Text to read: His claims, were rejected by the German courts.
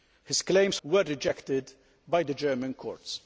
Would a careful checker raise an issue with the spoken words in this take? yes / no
no